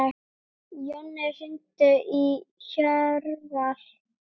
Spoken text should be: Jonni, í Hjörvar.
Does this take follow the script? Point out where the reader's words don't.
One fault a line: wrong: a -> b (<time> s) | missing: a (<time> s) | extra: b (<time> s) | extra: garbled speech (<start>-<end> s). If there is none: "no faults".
extra: hringdu (1.4 s)